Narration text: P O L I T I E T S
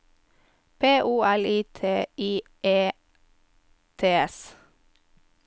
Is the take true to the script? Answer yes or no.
yes